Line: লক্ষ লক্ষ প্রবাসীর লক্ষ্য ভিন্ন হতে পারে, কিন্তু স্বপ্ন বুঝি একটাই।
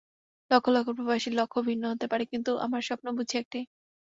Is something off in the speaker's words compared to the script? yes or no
yes